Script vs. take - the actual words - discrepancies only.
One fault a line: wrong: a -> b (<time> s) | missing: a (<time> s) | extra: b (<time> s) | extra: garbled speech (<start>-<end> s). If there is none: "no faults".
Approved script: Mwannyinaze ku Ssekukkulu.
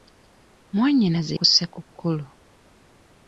no faults